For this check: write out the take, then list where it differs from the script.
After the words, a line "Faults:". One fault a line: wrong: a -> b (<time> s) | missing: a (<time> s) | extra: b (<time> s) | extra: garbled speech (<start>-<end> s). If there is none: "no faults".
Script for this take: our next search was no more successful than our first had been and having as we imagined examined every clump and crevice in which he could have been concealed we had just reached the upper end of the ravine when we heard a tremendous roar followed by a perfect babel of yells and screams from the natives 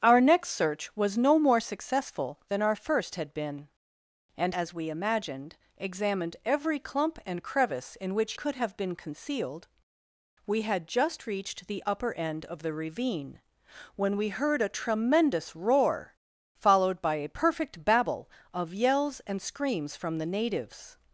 our next search was no more successful than our first had been and as we imagined examined every clump and crevice in which could have been concealed we had just reached the upper end of the ravine when we heard a tremendous roar followed by a perfect babel of yells and screams from the natives
Faults:
missing: having (4.5 s)
missing: he (8.3 s)